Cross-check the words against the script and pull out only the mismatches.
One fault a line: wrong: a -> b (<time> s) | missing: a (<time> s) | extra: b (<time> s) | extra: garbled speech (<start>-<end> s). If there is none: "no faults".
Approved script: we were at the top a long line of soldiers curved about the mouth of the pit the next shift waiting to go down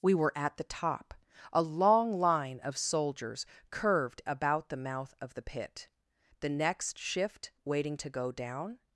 no faults